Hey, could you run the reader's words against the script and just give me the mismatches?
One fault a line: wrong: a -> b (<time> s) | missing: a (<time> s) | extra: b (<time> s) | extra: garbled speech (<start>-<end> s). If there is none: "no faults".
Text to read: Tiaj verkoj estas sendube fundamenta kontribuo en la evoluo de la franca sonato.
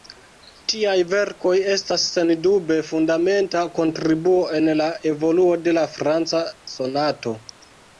no faults